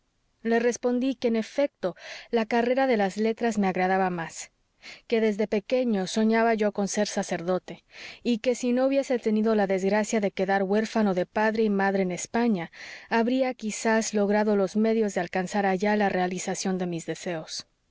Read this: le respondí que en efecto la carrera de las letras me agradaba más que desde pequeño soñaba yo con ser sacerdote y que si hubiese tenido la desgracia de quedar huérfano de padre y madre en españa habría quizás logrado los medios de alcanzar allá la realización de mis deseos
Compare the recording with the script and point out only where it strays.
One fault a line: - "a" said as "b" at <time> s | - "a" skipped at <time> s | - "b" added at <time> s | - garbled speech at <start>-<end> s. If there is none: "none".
- "no" added at 8.7 s